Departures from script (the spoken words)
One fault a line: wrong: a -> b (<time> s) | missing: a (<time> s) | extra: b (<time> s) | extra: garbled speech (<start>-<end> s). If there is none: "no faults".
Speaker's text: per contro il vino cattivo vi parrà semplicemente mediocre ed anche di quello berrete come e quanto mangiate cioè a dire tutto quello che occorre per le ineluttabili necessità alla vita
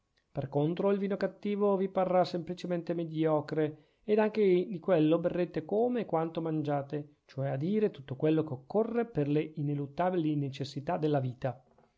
wrong: alla -> della (11.0 s)